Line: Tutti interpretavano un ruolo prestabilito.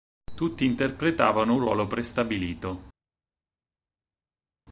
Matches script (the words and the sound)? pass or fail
pass